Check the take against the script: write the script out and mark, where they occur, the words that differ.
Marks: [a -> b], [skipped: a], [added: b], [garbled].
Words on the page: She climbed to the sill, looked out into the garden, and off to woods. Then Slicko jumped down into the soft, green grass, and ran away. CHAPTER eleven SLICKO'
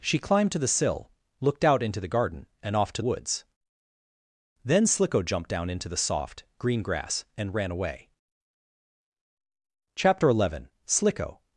She climbed to the sill, looked out into the garden, and off to woods. Then Slicko jumped down into the soft, green grass, and ran away. CHAPTER eleven SLICKO'